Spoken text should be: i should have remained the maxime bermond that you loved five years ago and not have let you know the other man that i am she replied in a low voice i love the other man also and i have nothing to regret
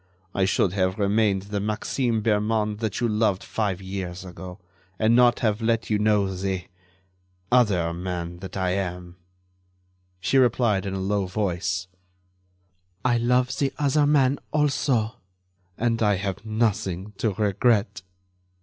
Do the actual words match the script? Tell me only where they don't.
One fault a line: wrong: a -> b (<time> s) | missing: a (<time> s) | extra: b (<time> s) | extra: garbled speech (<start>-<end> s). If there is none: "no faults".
no faults